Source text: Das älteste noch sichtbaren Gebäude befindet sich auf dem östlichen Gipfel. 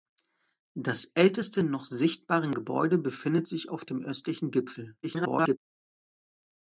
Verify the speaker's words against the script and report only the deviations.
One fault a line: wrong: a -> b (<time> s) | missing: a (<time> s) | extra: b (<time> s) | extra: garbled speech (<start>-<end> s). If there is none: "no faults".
extra: garbled speech (5.0-5.6 s)